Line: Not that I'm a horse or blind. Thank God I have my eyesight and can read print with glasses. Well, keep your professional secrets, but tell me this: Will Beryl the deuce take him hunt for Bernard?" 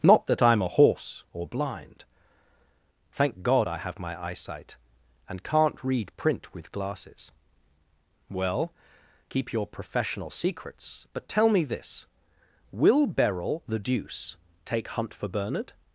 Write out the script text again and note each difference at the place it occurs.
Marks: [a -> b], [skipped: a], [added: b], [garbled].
Not that I'm a horse or blind. Thank God I have my eyesight and [can -> can't] read print with glasses. Well, keep your professional secrets, but tell me this: Will Beryl the deuce take [skipped: him] hunt for Bernard?"